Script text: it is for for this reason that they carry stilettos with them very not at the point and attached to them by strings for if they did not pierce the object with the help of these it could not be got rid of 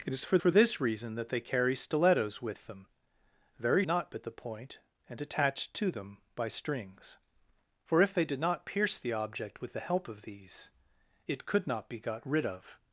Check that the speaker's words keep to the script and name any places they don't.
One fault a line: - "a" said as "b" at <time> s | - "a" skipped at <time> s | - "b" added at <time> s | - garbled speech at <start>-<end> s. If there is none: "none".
none